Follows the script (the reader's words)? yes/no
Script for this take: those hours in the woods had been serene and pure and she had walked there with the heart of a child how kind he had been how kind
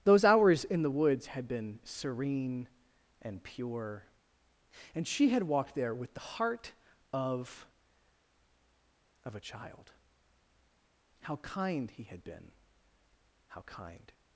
no